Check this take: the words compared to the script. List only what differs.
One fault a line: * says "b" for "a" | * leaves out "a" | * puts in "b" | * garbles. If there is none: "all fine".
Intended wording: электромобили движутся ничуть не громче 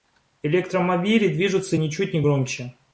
all fine